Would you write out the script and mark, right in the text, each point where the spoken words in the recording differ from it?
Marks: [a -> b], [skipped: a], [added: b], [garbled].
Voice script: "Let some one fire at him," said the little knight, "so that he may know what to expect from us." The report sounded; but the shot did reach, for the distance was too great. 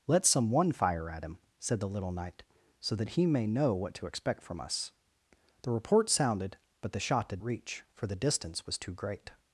"Let some one fire at him," said the little knight, "so that he may know what to expect from us." The report sounded; but the shot did reach, for the distance was too great.